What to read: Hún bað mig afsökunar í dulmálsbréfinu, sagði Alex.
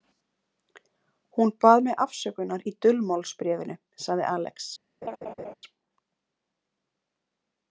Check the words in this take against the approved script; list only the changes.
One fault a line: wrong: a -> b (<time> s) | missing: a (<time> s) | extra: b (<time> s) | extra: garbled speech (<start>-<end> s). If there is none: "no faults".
no faults